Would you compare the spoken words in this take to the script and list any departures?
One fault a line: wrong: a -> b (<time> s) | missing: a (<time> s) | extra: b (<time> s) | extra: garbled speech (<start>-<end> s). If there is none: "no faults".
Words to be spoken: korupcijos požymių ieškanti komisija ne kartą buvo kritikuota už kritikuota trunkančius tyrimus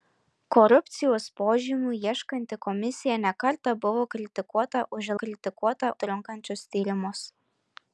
no faults